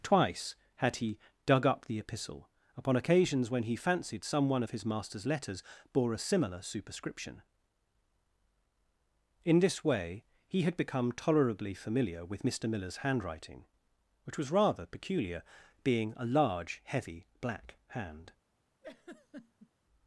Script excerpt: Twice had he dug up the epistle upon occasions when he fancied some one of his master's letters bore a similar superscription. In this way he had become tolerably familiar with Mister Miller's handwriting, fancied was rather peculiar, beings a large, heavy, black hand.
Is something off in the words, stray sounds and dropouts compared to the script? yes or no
yes